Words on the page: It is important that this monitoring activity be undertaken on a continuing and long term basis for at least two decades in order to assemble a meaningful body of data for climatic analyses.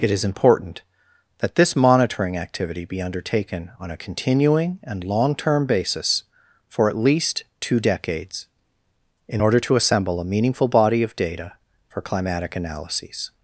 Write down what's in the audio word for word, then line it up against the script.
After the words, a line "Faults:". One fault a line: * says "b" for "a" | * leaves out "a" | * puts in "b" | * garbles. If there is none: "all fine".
It is important that this monitoring activity be undertaken on a continuing and long term basis for at least two decades in order to assemble a meaningful body of data for climatic analyses.
Faults:
all fine